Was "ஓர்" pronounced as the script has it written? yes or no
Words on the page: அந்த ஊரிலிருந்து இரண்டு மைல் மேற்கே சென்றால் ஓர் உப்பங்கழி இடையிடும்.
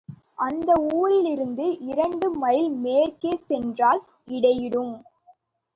no